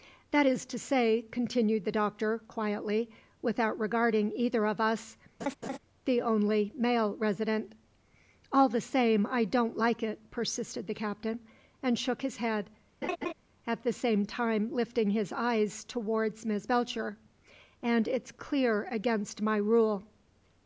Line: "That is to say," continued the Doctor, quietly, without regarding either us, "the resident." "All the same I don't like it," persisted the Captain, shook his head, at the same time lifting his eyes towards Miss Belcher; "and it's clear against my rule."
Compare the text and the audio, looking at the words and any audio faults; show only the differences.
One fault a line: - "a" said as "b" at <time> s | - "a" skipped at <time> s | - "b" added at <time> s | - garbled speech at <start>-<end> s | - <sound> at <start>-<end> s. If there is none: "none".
- "of" added at 4.7 s
- laugh at 5.4-5.8 s
- "only male" added at 6.2 s
- "and" added at 11.8 s
- laugh at 13.0-13.3 s